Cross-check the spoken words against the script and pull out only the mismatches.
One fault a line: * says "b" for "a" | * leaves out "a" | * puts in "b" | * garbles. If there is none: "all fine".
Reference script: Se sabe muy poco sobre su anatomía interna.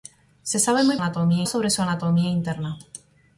* says "anatomía" for "poco"